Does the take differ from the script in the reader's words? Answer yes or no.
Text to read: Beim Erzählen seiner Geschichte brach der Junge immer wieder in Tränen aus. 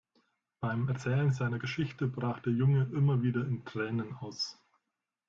no